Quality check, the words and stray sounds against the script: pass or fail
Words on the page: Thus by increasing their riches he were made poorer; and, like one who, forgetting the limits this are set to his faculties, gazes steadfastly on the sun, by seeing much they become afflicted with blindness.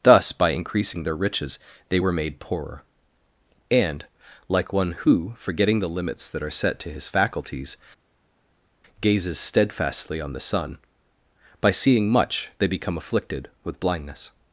fail